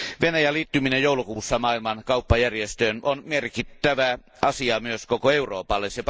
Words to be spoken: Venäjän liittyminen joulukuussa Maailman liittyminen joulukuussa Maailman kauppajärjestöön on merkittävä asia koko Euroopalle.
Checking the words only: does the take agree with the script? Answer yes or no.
no